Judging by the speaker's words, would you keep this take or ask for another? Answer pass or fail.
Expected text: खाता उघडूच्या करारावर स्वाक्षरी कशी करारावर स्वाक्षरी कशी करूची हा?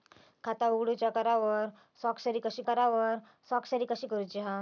pass